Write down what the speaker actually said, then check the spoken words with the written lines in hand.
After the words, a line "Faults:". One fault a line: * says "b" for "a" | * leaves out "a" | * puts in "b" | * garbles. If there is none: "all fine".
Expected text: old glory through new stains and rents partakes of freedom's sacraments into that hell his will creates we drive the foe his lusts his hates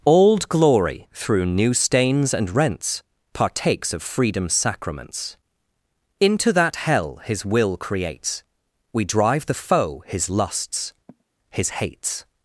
old glory through new stains and rents partakes of freedom's sacraments into that hell his will creates we drive the foe his lusts his hates
Faults:
all fine